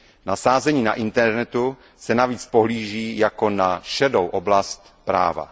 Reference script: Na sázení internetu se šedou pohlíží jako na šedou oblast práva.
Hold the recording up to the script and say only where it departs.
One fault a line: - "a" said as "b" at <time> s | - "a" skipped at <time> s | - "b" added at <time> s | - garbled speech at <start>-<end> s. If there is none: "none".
- "na" added at 0.8 s
- "šedou" said as "navíc" at 2.1 s